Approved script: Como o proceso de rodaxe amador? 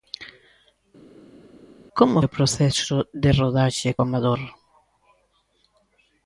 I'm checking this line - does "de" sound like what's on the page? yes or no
yes